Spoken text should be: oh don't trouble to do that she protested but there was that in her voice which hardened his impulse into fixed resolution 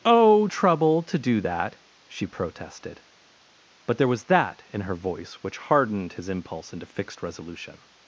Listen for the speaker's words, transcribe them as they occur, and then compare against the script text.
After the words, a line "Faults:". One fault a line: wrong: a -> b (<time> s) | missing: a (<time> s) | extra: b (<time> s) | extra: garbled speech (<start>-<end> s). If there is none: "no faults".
oh trouble to do that she protested but there was that in her voice which hardened his impulse into fixed resolution
Faults:
missing: don't (0.5 s)